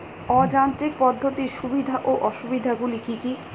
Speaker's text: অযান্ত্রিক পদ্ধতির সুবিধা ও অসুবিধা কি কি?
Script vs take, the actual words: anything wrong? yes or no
yes